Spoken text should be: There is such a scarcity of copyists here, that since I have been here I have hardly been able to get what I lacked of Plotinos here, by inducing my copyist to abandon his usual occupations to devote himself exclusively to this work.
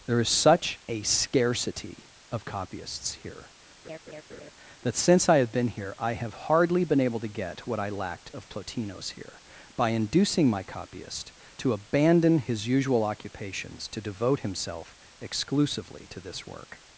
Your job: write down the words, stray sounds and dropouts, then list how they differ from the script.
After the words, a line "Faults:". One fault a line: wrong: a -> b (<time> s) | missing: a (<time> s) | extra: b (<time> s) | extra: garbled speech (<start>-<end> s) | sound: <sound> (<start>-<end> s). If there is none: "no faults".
There is such a scarcity of copyists here, that since I have been here I have hardly been able to get what I lacked of Plotinos here, by inducing my copyist to abandon his usual occupations to devote himself exclusively to this work.
Faults:
sound: laugh (3.8-4.5 s)